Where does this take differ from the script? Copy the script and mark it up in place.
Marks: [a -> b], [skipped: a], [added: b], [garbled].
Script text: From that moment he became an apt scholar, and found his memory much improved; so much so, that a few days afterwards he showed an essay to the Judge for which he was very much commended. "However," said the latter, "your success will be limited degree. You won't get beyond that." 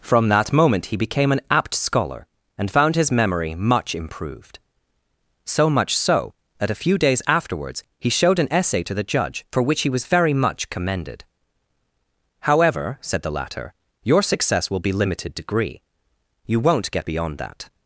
From that moment he became an apt scholar, and found his memory much improved; so much so, that a few days afterwards he showed an essay to the Judge for which he was very much commended. "However," said the latter, "your success will be limited degree. You won't get beyond that."